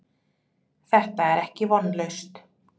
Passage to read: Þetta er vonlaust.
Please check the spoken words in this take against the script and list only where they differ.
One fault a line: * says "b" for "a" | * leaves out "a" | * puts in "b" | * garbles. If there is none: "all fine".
* puts in "ekki"